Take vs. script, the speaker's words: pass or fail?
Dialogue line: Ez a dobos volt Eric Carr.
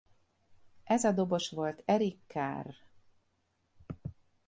pass